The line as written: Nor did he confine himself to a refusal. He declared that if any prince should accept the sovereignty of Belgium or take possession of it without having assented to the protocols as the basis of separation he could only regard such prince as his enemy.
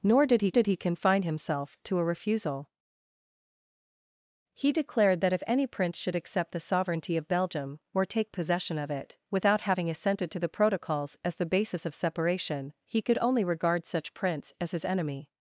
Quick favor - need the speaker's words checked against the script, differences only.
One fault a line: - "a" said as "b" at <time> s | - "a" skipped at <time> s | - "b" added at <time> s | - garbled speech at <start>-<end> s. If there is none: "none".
- "did he" added at 0.5 s